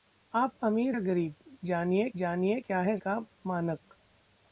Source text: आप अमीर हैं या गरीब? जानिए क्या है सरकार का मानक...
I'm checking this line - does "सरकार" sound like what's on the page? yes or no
no